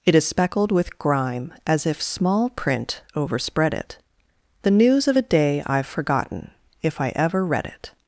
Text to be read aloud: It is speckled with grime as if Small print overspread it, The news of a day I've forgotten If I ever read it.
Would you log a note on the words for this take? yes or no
no